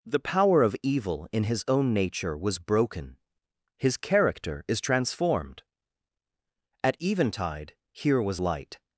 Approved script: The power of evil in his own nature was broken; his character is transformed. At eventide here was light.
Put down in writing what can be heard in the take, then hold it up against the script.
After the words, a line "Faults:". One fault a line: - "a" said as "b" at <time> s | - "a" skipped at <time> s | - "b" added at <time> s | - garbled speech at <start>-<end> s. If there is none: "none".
The power of evil in his own nature was broken; his character is transformed. At eventide here was light.
Faults:
none